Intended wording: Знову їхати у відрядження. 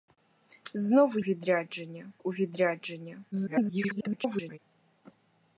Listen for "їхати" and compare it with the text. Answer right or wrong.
wrong